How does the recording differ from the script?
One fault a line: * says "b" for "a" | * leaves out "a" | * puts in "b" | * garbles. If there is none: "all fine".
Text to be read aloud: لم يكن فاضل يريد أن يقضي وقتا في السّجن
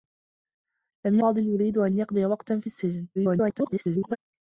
* leaves out "يكن"
* garbles